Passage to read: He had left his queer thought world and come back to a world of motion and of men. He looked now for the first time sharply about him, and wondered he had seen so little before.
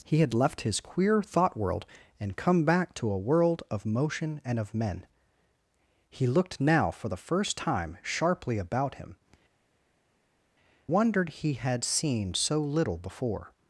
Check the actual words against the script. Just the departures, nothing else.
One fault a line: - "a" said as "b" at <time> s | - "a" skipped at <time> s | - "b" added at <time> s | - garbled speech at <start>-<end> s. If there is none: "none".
- "and" skipped at 9.2 s